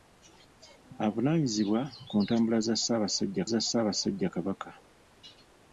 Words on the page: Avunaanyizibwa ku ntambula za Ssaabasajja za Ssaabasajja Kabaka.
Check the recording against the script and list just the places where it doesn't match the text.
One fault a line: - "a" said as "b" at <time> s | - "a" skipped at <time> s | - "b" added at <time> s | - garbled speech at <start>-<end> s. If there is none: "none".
none